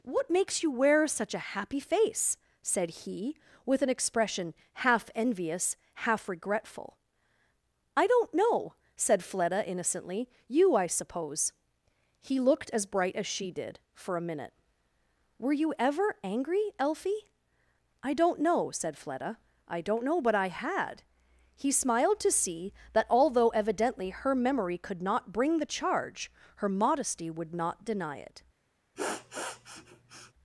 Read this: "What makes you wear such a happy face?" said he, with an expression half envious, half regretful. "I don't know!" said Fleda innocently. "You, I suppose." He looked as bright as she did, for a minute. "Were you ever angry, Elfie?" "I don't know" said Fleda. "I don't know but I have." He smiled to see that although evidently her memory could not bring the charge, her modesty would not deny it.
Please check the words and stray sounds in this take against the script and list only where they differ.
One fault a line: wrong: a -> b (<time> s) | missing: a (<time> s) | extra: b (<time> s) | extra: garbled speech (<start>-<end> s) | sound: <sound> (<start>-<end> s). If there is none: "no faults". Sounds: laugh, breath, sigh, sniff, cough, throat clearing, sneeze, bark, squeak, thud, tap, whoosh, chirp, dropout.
wrong: have -> had (20.5 s)
sound: sniff (28.9-30.3 s)